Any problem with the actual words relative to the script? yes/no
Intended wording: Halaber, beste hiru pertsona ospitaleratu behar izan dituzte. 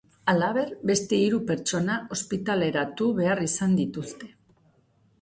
no